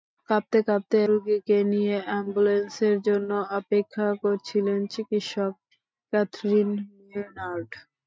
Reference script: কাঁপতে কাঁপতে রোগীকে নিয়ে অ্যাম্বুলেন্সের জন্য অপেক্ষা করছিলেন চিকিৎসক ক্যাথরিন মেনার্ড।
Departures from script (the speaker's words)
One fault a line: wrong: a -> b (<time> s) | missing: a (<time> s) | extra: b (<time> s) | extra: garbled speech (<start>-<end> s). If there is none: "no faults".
no faults